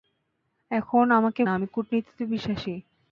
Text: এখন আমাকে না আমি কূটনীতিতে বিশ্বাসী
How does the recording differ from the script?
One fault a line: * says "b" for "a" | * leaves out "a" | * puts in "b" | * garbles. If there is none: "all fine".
all fine